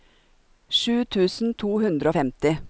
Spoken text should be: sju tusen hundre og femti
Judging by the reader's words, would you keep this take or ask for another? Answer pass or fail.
fail